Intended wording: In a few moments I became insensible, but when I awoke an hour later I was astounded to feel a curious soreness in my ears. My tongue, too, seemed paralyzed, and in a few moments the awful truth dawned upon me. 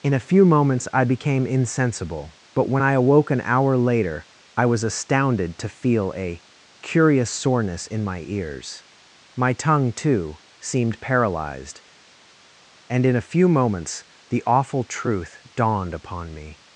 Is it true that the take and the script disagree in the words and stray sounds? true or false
false